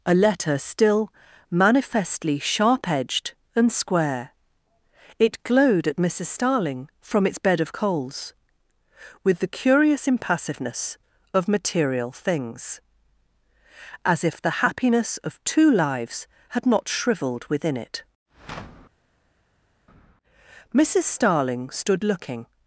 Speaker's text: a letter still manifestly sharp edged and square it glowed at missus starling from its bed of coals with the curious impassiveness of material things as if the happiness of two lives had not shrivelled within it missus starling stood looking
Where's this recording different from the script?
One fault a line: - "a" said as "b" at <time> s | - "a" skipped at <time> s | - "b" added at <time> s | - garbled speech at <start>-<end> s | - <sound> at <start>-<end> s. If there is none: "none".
none